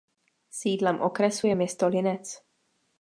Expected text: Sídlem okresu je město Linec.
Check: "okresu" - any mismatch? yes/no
no